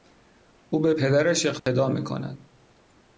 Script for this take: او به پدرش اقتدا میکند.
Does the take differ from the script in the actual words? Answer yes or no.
no